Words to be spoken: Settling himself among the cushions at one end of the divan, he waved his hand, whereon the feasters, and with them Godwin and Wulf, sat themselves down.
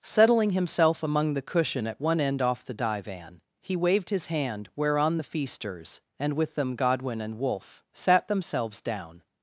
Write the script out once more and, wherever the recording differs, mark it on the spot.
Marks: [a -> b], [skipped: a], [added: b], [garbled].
Settling himself among the [cushions -> cushion] at one end [of -> off] the divan, he waved his hand, whereon the feasters, and with them Godwin and Wulf, sat themselves down.